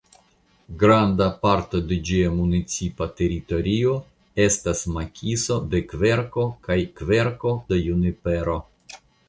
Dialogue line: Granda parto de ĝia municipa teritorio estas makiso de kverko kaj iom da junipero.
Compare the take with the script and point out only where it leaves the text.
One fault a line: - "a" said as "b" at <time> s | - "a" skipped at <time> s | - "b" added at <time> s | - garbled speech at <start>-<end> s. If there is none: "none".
- "iom" said as "kverko" at 7.0 s